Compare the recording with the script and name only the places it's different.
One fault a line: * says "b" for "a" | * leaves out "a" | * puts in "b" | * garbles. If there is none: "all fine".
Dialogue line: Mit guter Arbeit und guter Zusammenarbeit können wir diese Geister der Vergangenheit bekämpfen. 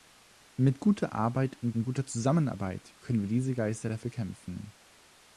* puts in "und"
* leaves out "Vergangenheit"